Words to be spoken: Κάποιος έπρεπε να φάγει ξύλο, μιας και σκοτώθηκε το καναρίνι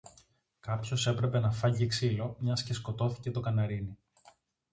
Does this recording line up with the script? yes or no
yes